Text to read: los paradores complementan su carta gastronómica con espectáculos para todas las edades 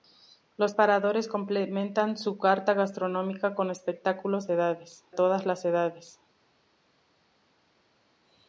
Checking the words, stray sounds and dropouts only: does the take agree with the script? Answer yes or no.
no